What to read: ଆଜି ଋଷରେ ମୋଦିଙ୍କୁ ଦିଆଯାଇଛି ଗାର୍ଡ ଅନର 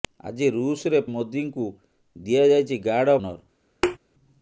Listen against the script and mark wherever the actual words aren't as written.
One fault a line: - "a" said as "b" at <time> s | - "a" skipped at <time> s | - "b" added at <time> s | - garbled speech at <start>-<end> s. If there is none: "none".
none